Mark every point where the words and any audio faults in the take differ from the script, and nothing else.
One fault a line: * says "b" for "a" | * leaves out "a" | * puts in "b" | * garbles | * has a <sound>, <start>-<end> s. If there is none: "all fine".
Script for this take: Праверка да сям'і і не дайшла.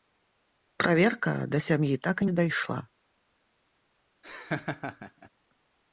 * puts in "так"
* has a laugh, 4.2-5.3 s